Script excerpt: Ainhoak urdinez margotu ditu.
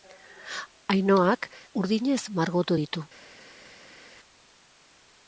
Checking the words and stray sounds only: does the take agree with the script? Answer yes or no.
yes